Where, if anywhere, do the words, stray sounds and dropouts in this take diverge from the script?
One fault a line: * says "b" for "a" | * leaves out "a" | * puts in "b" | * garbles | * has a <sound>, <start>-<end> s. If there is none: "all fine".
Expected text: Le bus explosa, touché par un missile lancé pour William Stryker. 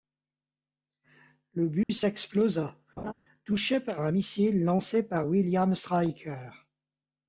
* has a dropout, 1.8-1.9 s
* has a laugh, 3.0-3.1 s
* says "par" for "pour"